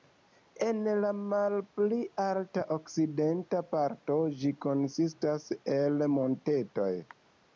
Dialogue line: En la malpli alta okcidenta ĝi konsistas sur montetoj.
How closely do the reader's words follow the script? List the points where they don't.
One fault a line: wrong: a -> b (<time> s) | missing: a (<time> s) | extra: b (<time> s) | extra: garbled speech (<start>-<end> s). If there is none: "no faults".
extra: parto (3.8 s)
wrong: sur -> el (5.8 s)